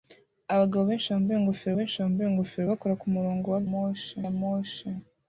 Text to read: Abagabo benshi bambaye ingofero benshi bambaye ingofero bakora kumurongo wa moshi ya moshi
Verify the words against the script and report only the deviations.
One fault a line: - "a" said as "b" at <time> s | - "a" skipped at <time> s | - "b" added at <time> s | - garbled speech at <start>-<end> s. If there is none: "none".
none